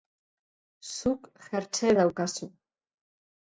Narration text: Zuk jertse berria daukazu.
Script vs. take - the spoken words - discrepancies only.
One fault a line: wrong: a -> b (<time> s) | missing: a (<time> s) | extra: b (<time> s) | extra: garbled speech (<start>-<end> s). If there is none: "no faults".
missing: berria (1.9 s)